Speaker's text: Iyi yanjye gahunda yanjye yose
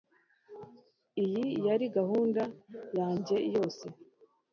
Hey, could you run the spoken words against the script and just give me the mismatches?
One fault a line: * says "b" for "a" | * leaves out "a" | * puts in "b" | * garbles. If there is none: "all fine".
* says "yari" for "yanjye"